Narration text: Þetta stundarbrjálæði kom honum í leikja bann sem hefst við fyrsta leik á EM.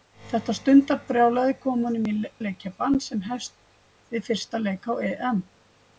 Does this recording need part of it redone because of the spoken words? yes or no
no